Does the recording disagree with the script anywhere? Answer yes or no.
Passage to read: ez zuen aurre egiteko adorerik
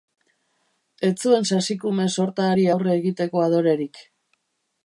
yes